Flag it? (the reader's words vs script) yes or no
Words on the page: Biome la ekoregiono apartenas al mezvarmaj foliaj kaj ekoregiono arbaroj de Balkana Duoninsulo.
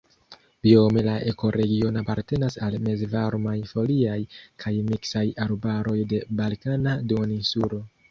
yes